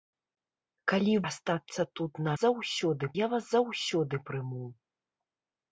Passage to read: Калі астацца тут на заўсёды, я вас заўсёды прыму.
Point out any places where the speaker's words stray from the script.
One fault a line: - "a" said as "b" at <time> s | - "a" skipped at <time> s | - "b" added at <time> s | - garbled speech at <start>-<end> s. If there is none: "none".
none